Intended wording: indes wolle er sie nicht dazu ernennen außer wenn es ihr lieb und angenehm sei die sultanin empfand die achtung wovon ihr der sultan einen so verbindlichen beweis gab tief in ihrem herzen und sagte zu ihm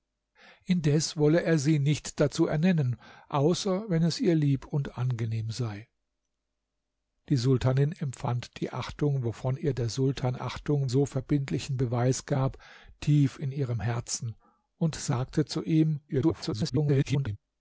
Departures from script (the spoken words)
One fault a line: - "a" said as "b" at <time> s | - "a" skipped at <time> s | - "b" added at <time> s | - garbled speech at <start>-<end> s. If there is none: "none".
- "einen" said as "achtung" at 10.4 s
- garbled speech at 16.1-17.4 s